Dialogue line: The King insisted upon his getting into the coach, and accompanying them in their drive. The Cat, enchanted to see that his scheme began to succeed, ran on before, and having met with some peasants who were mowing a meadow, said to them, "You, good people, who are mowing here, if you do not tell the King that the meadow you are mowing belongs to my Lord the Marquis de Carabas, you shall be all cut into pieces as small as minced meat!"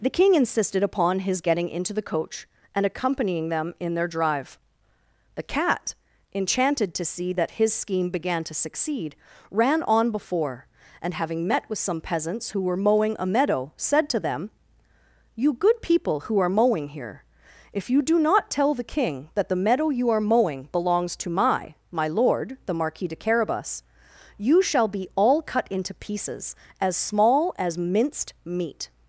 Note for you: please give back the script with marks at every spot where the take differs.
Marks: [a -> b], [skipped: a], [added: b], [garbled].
The King insisted upon his getting into the coach, and accompanying them in their drive. The Cat, enchanted to see that his scheme began to succeed, ran on before, and having met with some peasants who were mowing a meadow, said to them, "You, good people, who are mowing here, if you do not tell the King that the meadow you are mowing belongs to my [added: my] Lord the Marquis de Carabas, you shall be all cut into pieces as small as minced meat!"